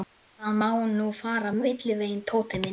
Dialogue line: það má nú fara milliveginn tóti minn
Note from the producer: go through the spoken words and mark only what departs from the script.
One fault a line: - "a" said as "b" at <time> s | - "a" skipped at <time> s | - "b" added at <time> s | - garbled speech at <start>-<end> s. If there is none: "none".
none